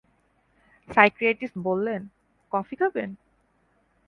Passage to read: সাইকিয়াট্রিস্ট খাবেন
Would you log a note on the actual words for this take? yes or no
yes